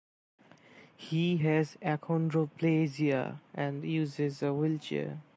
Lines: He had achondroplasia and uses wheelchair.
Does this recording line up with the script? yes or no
no